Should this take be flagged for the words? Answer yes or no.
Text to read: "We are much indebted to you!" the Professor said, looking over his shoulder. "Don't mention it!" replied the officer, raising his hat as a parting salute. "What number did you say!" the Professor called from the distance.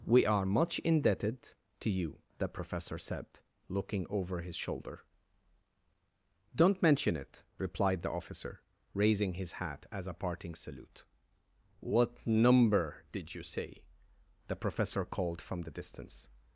no